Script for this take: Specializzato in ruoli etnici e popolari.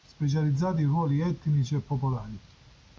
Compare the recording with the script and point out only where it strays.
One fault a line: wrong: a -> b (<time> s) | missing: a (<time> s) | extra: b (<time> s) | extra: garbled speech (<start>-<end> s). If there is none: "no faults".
no faults